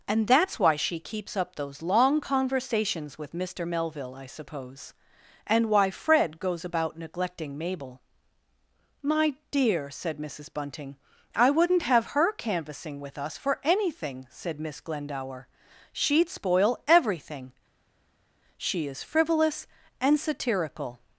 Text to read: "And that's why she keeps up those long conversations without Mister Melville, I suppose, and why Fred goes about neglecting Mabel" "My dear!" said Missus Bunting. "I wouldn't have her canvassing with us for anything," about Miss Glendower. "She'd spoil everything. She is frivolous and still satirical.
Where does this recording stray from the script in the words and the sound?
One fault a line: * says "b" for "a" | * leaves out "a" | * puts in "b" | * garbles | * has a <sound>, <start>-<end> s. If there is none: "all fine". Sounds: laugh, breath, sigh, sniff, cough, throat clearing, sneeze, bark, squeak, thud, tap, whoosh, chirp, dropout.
* says "with" for "without"
* says "said" for "about"
* leaves out "still"